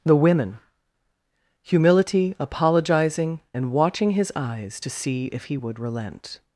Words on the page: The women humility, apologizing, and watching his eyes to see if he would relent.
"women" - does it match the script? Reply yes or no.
yes